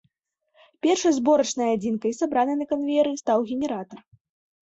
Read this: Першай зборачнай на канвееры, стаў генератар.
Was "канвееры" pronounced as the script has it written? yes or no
yes